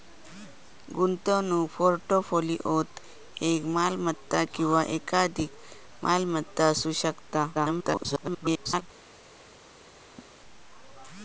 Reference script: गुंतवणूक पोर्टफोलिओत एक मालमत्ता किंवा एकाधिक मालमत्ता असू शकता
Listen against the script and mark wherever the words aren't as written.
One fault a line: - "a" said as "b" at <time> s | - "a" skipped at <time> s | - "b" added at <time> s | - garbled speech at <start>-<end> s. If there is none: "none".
- garbled speech at 7.5-8.8 s